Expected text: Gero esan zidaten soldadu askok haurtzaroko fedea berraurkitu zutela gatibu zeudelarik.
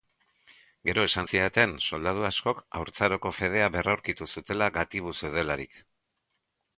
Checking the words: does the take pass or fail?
pass